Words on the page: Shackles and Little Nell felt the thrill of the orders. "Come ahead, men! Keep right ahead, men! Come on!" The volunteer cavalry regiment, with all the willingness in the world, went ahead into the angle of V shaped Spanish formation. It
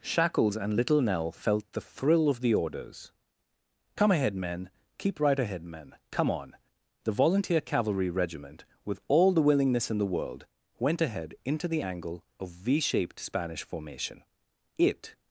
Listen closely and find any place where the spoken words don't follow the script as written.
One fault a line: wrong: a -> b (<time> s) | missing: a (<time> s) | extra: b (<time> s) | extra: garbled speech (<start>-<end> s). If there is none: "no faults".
no faults